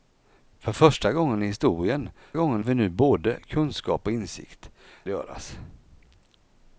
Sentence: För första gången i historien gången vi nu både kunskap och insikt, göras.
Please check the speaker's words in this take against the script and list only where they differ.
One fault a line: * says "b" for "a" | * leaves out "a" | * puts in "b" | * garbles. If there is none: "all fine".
all fine